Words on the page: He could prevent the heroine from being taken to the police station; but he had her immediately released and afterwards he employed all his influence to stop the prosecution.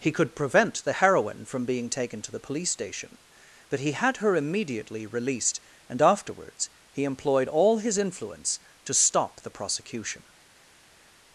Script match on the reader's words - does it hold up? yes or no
yes